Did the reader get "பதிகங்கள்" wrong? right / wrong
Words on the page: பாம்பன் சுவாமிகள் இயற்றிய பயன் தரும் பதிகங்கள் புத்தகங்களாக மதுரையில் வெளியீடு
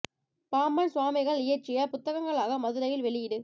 wrong